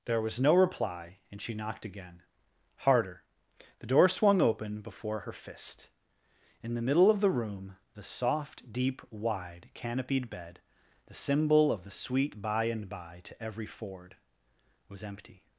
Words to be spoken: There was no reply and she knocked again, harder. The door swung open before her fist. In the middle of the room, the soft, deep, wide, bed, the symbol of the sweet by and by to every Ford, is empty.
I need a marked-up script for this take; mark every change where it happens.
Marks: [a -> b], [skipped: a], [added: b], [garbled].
There was no reply and she knocked again, harder. The door swung open before her fist. In the middle of the room, the soft, deep, wide, [added: canopied] bed, the symbol of the sweet by and by to every Ford, [is -> was] empty.